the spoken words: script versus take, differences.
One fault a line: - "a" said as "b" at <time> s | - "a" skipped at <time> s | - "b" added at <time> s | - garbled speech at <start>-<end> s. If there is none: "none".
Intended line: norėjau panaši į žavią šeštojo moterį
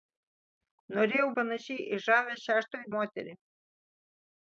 none